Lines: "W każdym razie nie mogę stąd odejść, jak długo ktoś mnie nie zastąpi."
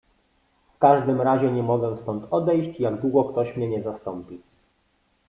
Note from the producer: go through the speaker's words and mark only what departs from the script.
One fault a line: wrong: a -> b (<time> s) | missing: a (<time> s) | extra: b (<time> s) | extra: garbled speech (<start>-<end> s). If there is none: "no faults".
no faults